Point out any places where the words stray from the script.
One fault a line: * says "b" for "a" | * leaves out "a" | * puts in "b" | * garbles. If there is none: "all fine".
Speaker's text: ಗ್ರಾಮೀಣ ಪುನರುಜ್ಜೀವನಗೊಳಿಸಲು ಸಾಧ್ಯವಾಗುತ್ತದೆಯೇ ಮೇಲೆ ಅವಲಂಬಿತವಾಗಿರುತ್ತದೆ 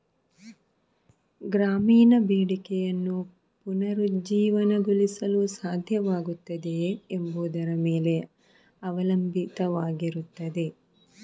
* puts in "ಬೇಡಿಕೆಯನ್ನು"
* puts in "ಎಂಬುದರ"